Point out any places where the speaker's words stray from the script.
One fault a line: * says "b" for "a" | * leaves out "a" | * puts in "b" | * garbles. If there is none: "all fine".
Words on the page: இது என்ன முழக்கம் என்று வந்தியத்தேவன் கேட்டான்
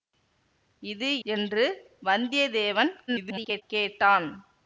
* leaves out "என்ன முழக்கம்"
* garbles